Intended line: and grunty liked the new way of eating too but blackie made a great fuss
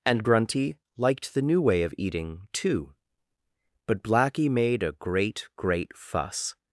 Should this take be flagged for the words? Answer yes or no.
yes